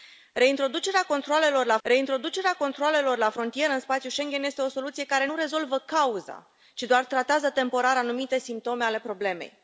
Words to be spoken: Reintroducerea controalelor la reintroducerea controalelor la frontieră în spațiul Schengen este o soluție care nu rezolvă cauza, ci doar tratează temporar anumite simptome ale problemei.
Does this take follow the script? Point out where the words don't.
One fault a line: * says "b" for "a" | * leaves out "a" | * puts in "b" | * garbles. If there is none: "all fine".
all fine